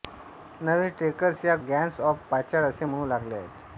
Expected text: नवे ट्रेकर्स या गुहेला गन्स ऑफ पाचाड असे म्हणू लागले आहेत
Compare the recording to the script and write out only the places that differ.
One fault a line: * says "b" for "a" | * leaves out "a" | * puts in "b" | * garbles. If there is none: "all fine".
* leaves out "गुहेला"